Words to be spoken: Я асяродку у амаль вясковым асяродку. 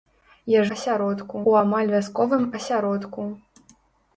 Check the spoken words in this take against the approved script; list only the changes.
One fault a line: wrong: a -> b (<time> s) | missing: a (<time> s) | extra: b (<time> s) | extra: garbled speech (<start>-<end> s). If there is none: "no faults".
no faults